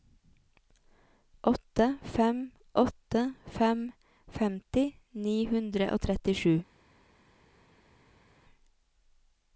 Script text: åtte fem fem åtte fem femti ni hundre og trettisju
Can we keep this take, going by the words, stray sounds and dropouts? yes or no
no